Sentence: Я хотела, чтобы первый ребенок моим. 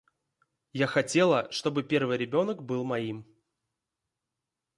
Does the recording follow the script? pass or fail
fail